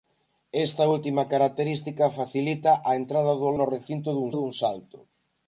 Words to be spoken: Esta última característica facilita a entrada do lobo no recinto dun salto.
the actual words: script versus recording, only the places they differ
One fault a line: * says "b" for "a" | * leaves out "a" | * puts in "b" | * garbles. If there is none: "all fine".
* leaves out "lobo"
* puts in "dun"